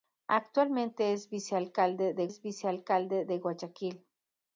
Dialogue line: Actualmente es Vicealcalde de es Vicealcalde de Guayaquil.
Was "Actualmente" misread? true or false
false